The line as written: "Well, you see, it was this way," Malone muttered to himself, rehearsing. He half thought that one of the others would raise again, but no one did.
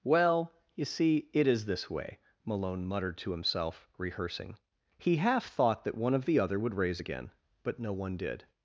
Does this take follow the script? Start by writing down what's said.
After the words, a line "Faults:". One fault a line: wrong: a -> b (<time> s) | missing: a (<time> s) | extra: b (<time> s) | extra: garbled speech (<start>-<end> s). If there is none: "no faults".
"Well, you see, it is this way," Malone muttered to himself, rehearsing. He half thought that one of the other would raise again, but no one did.
Faults:
wrong: was -> is (1.5 s)
wrong: others -> other (6.4 s)